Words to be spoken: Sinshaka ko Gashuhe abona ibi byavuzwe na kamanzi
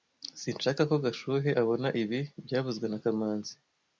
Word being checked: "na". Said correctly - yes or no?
yes